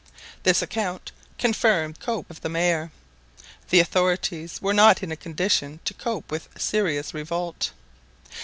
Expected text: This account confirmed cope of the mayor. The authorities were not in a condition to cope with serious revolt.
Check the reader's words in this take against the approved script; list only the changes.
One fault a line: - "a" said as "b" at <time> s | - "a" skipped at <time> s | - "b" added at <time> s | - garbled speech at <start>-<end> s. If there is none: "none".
none